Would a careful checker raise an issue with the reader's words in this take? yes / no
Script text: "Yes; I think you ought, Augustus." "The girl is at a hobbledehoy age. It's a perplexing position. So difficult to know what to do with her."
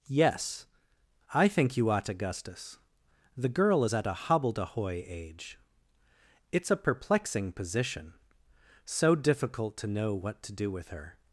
no